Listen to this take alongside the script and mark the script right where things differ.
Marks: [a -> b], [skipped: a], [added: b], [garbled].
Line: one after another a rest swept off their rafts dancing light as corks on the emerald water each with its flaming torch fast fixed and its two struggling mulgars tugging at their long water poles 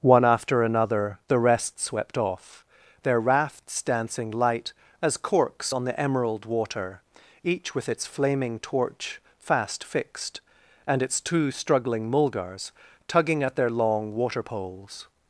one after another [a -> the] rest swept off their rafts dancing light as corks on the emerald water each with its flaming torch fast fixed and its two struggling mulgars tugging at their long water poles